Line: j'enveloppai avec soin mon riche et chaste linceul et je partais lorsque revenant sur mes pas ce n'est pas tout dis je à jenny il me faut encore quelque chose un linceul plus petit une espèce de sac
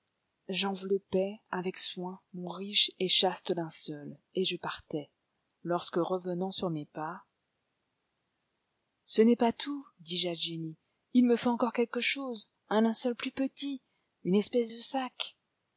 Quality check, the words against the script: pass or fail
pass